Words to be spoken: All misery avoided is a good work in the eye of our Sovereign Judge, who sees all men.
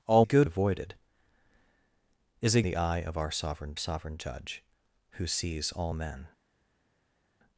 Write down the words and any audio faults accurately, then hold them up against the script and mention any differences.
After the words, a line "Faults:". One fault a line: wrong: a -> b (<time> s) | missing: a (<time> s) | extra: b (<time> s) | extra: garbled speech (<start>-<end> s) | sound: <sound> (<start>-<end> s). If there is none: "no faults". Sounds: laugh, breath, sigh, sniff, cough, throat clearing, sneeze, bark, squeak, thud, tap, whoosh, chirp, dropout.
All good avoided is a the eye of our Sovereign Sovereign Judge, who sees all men.
Faults:
wrong: misery -> good (0.2 s)
missing: good work in (2.6 s)
extra: Sovereign (3.8 s)